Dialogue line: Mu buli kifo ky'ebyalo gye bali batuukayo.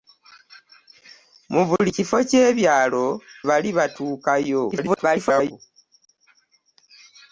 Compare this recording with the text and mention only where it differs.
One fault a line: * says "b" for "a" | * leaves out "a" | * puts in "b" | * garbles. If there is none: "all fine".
* leaves out "gye"
* garbles